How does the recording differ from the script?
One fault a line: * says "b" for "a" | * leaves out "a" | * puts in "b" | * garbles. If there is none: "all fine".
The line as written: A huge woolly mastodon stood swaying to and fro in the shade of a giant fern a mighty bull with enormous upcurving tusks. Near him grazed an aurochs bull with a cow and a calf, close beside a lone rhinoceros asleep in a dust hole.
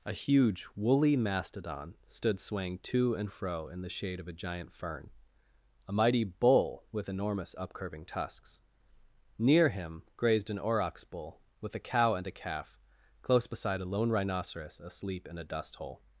all fine